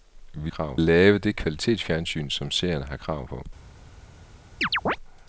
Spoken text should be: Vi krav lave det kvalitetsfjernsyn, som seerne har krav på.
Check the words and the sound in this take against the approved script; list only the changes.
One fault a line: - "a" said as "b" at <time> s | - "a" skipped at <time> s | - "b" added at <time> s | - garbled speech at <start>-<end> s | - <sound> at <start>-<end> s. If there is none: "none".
- chirp at 4.6-5.0 s